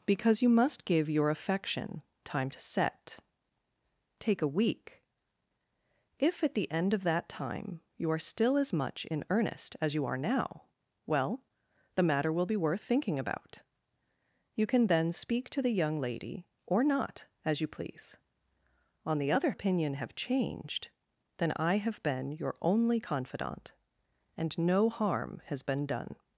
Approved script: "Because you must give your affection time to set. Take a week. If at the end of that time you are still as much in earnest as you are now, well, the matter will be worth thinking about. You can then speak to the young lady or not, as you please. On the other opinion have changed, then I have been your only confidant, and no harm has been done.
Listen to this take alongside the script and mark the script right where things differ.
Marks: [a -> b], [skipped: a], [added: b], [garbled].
"Because you must give your affection time to set. Take a week. If at the end of that time you are still as much in earnest as you are now, well, the matter will be worth thinking about. You can then speak to the young lady or not, as you please. On the other opinion have changed, then I have been your only confidant, and no harm has been done.